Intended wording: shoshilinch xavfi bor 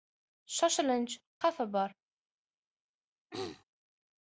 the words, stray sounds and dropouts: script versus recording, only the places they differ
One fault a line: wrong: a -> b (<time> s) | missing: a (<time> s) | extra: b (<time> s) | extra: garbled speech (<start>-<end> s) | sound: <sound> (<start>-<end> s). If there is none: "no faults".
sound: throat clearing (3.3-3.6 s)